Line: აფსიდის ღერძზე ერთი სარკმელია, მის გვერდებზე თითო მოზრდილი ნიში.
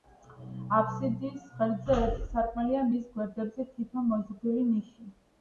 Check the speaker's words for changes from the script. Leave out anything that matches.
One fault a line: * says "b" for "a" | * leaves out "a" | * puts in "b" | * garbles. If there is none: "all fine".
all fine